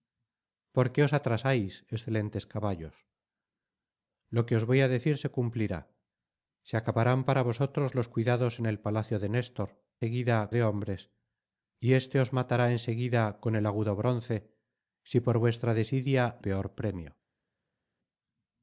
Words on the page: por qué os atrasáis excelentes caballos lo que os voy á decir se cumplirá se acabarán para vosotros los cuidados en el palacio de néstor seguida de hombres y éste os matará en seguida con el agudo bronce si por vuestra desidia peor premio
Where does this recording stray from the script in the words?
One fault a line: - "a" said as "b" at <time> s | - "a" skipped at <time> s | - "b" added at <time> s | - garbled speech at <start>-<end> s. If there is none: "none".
none